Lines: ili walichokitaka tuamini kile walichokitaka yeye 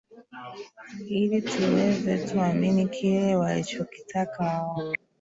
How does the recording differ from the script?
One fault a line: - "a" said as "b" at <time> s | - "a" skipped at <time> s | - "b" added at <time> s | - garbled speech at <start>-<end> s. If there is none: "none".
- "walichokitaka" said as "tuweze" at 1.4 s
- "yeye" said as "wao" at 4.4 s